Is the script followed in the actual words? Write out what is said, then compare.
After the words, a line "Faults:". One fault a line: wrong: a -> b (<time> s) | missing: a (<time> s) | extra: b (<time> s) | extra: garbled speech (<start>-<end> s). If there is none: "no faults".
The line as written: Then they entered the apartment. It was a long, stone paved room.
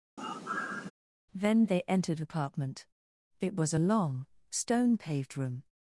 Then they entered apartment. It was a long, stone paved room.
Faults:
missing: the (2.2 s)